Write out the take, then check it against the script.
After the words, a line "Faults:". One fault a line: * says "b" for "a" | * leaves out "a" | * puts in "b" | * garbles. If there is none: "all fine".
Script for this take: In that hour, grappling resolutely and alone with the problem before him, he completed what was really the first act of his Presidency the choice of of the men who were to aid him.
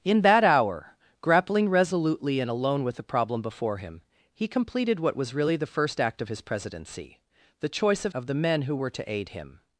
In that hour, grappling resolutely and alone with the problem before him, he completed what was really the first act of his Presidency the choice of of the men who were to aid him.
Faults:
all fine